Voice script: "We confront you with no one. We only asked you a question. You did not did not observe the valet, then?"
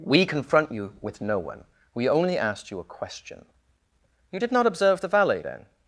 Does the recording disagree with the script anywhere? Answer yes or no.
yes